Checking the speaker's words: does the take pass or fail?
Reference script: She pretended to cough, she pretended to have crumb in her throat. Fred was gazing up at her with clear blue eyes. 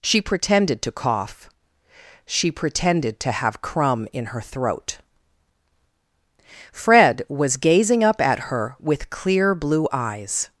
pass